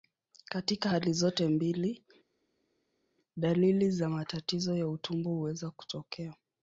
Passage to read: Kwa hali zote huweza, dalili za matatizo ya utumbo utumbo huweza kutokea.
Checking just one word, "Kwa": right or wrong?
wrong